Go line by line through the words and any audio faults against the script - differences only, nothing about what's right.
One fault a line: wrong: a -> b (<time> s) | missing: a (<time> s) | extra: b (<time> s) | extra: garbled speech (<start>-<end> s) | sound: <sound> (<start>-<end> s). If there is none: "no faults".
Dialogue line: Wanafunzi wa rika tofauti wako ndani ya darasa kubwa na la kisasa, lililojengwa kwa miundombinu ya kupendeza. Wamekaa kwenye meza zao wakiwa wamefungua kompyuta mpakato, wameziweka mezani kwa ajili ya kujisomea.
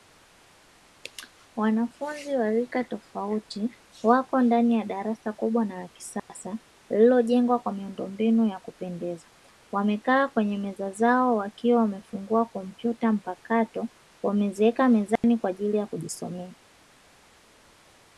sound: dropout (6.2-6.3 s)
sound: dropout (15.2-15.2 s)